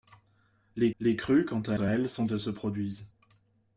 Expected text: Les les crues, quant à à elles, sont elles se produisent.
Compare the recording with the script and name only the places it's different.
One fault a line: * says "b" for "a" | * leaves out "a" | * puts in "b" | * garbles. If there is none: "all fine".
all fine